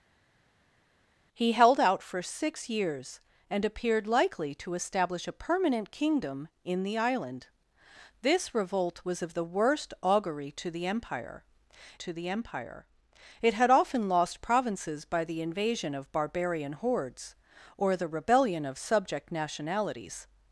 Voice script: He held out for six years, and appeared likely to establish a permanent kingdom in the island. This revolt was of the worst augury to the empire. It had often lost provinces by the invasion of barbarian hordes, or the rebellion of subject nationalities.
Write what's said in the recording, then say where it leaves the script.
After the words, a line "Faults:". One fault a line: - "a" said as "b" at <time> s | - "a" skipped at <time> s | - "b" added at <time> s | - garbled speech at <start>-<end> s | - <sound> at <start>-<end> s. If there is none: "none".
He held out for six years, and appeared likely to establish a permanent kingdom in the island. This revolt was of the worst augury to the empire to the empire. It had often lost provinces by the invasion of barbarian hordes, or the rebellion of subject nationalities.
Faults:
- "to the empire" added at 11.9 s